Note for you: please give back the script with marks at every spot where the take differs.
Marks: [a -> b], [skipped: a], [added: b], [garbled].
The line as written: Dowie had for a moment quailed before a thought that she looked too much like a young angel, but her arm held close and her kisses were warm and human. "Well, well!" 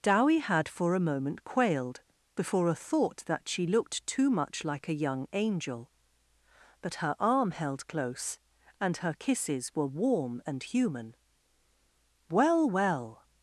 Dowie had for a moment quailed before a thought that she looked too much like a young angel, but her arm held close and her kisses were warm and human. "Well, well!"